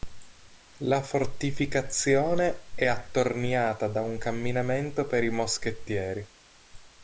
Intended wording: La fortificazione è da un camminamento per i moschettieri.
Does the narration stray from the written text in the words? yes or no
yes